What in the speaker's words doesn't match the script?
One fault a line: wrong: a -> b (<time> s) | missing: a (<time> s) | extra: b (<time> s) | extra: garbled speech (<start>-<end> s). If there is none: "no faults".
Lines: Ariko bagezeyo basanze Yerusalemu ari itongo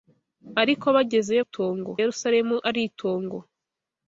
wrong: basanze -> itongo (1.4 s)